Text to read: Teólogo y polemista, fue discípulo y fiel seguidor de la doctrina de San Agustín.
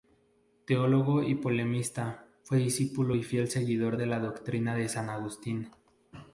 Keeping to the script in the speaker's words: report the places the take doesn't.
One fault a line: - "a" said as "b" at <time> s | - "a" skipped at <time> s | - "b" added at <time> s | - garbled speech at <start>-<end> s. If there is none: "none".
none